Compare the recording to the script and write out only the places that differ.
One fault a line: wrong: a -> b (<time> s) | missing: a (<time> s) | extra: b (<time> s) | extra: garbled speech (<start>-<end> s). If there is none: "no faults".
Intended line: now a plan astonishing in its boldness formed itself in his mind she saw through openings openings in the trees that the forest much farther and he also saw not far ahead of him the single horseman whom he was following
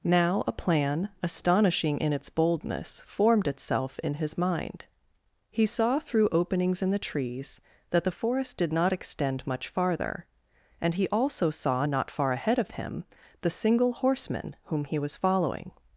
wrong: she -> he (5.5 s)
missing: openings (6.8 s)
extra: did not extend (8.6 s)